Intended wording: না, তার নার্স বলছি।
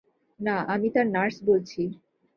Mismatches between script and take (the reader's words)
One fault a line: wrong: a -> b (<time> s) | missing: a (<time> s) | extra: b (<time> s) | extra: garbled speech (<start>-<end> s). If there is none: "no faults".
extra: আমি (0.7 s)